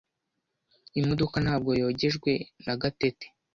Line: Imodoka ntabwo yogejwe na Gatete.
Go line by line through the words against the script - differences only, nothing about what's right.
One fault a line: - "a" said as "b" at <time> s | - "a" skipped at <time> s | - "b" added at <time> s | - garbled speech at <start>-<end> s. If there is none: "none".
none